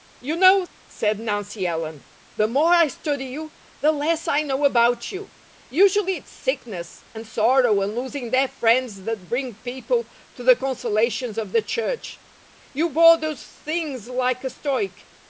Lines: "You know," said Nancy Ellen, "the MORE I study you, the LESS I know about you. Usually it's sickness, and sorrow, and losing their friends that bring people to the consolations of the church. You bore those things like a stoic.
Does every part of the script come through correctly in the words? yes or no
yes